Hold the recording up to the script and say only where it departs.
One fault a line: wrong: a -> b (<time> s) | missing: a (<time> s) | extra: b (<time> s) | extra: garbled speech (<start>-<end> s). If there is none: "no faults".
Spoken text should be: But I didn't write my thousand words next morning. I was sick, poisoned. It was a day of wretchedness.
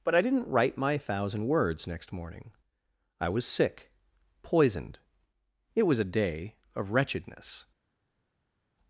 no faults